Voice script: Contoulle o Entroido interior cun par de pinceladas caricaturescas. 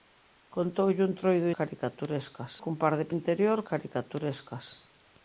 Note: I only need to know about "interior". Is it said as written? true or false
false